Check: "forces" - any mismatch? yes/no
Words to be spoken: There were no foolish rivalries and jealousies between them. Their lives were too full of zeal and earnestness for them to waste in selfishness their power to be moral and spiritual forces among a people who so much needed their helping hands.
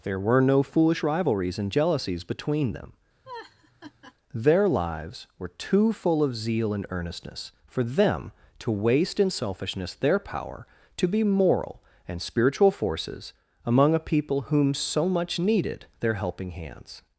no